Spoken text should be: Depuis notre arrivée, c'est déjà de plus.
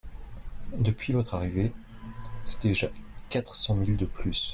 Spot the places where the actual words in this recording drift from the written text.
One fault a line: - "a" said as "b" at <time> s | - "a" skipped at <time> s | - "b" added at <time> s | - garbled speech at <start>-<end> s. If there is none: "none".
- "notre" said as "votre" at 1.1 s
- "quatre cents mille" added at 3.3 s